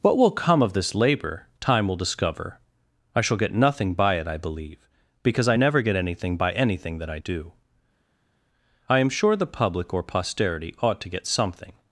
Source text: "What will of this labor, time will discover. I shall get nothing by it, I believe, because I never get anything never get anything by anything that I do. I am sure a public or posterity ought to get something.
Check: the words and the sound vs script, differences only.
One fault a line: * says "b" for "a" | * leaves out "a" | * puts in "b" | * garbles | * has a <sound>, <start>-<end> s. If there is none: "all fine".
* puts in "come"
* leaves out "never get anything"
* says "the" for "a"